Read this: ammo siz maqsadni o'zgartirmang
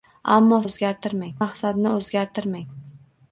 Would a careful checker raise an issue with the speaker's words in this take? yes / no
yes